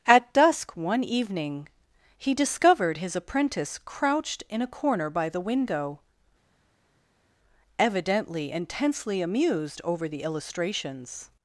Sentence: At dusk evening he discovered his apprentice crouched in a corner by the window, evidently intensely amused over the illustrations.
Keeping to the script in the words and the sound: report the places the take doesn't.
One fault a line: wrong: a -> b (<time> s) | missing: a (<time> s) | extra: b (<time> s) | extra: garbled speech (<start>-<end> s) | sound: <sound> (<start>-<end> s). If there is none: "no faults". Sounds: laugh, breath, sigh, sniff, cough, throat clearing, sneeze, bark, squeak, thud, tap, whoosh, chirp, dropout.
extra: one (0.8 s)